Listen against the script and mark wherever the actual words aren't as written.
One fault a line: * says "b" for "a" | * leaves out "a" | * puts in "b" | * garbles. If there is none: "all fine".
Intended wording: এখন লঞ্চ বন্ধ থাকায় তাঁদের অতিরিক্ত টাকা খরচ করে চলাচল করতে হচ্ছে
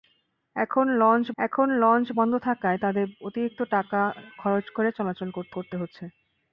* puts in "এখন লঞ্চ"
* puts in "করতে"